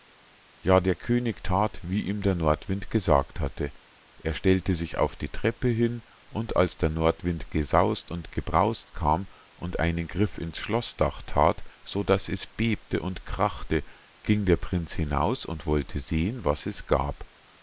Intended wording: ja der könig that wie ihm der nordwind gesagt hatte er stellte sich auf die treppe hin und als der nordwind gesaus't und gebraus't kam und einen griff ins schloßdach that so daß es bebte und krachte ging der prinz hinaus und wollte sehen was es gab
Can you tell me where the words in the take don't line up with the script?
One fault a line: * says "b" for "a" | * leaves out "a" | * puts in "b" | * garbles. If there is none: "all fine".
all fine